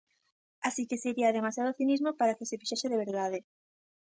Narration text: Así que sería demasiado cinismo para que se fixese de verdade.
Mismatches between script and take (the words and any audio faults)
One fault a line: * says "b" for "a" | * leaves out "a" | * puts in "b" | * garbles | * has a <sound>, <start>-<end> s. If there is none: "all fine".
all fine